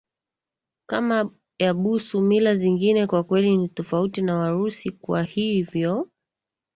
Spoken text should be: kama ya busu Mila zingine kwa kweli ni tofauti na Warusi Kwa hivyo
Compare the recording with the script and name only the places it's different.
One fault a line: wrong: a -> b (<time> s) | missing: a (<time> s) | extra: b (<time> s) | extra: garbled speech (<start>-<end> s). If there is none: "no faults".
no faults